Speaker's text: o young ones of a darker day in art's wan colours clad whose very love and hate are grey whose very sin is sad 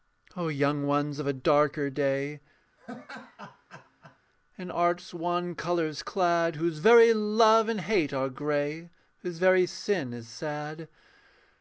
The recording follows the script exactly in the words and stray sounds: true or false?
false